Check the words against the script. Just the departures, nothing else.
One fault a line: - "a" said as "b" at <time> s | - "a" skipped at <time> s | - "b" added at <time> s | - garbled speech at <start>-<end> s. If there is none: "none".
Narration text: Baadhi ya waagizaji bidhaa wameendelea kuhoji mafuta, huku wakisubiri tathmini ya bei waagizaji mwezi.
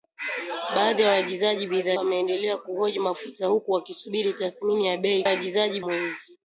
none